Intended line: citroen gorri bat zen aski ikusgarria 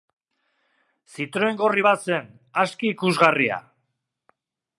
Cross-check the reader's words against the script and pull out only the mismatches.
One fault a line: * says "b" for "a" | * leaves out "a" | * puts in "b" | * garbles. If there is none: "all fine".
all fine